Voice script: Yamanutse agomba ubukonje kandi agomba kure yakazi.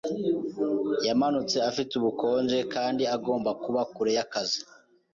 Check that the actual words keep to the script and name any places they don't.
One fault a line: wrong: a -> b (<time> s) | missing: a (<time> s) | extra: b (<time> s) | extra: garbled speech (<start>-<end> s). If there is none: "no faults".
wrong: agomba -> afite (1.7 s)
extra: kuba (3.6 s)